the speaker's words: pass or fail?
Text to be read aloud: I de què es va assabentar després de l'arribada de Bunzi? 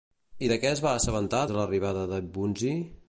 fail